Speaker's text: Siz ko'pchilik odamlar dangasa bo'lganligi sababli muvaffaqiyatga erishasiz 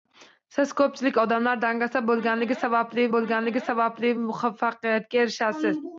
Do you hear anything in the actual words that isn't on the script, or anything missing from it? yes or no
yes